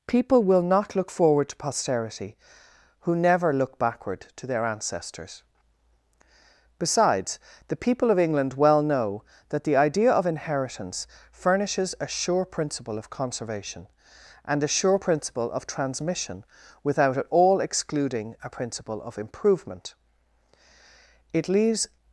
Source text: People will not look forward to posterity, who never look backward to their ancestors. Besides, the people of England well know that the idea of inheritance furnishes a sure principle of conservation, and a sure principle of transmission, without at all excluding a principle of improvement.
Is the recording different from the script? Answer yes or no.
yes